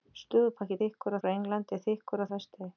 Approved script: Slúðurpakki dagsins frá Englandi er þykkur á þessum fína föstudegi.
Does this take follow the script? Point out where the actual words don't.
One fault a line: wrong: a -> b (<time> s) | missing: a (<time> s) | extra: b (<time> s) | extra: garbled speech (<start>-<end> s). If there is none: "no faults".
wrong: dagsins -> þykkur (0.8 s)
missing: þessum fína (2.3 s)